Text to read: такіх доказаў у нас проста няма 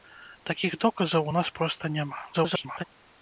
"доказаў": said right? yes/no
yes